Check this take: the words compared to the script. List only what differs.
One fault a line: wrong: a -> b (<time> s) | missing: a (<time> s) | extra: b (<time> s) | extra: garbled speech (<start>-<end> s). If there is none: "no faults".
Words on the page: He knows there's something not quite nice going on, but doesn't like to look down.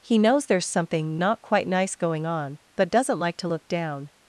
no faults